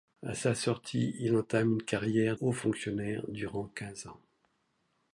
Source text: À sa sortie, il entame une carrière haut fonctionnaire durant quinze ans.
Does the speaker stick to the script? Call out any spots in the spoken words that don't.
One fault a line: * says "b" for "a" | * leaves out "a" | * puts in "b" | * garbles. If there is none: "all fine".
all fine